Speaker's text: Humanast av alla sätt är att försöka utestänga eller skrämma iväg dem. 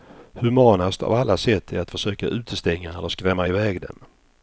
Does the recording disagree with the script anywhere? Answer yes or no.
no